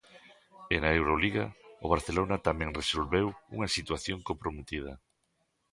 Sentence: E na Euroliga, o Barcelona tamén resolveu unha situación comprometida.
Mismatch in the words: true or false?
false